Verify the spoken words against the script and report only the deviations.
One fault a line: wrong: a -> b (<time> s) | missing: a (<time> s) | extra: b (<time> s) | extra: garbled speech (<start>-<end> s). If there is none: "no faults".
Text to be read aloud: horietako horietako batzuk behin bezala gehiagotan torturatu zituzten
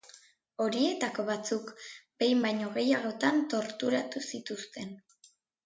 missing: horietako (1.2 s)
wrong: bezala -> baino (2.5 s)